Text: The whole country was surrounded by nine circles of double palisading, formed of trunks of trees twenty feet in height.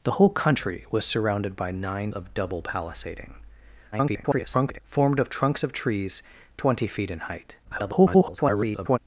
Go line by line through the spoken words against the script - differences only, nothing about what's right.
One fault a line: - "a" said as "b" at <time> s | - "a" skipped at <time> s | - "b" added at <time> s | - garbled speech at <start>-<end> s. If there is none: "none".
- "circles" skipped at 2.1 s
- garbled speech at 3.9-4.8 s
- garbled speech at 7.6-9.0 s